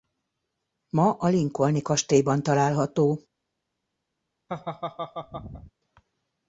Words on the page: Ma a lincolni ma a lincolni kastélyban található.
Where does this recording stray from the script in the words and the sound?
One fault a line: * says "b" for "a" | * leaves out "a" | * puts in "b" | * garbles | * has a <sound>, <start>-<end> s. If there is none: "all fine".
* leaves out "ma a lincolni"
* has a laugh, 4.5-5.7 s